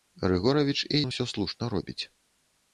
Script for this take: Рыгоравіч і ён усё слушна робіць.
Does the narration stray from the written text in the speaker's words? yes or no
no